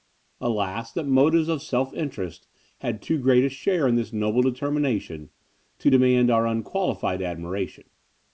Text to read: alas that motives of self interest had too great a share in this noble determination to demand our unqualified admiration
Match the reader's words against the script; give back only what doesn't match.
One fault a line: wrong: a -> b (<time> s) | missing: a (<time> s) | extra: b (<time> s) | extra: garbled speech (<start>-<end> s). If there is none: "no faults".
no faults